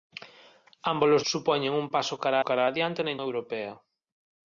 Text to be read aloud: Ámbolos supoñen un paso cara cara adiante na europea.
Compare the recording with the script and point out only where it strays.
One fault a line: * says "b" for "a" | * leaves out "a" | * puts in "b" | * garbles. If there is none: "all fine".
all fine